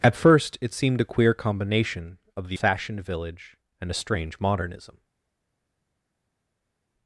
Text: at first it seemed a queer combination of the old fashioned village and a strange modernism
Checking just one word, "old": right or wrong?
wrong